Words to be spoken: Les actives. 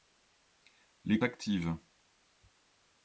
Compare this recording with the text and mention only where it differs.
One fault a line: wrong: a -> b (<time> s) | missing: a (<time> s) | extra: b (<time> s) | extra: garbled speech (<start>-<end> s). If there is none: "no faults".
no faults